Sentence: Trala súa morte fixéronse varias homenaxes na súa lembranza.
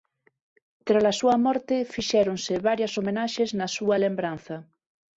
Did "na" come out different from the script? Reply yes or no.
no